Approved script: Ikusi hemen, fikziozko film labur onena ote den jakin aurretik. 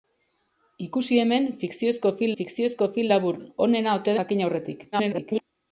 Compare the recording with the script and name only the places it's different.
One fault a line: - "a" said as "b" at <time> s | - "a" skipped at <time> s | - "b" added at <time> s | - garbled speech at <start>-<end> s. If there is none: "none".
- "fikziozko film" added at 2.4 s
- "den" skipped at 4.2 s
- garbled speech at 4.9-5.4 s